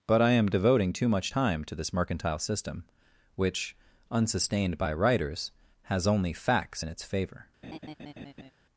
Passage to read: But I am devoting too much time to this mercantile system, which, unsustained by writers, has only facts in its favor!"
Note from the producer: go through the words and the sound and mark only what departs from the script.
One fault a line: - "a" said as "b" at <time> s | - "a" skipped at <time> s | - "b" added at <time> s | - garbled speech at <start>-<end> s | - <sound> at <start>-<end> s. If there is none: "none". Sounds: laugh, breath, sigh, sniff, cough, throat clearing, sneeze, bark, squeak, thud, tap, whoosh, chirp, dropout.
- laugh at 7.6-8.5 s